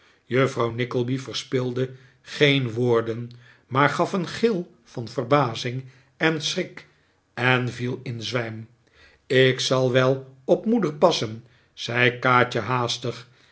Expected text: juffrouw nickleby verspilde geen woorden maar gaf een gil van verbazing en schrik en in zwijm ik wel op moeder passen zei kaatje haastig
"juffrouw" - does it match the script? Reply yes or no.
yes